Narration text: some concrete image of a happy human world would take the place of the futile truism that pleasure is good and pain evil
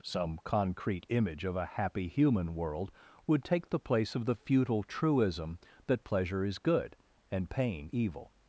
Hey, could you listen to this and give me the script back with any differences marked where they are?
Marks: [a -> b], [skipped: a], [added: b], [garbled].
some concrete image of a happy human world would take the place of the futile truism that pleasure is good and pain evil